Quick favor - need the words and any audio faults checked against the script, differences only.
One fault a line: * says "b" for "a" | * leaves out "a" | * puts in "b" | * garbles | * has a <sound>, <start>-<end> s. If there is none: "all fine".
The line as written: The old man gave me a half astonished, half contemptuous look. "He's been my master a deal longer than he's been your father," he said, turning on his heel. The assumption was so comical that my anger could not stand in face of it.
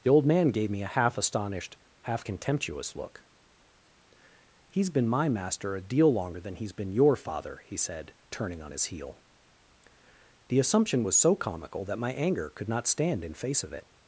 all fine